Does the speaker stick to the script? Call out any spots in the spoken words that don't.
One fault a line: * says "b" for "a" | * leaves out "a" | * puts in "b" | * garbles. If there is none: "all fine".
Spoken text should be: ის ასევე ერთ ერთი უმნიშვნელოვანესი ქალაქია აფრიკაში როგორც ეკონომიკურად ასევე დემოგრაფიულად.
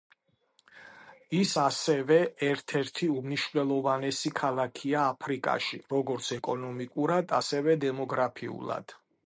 all fine